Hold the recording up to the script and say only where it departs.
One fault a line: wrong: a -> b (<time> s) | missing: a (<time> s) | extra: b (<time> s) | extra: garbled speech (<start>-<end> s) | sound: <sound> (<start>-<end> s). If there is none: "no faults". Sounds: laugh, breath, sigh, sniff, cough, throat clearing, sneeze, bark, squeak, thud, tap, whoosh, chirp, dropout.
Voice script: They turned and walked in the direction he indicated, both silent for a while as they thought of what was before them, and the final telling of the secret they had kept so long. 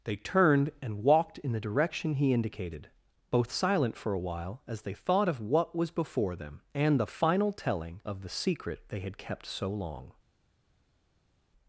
no faults